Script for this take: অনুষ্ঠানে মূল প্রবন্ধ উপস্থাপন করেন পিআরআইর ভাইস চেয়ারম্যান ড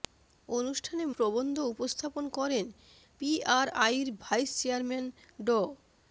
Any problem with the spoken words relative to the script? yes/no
yes